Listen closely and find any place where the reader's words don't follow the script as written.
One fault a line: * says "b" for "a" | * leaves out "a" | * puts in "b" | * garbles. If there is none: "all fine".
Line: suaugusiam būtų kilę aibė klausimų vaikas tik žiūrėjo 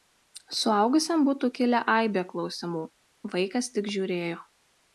all fine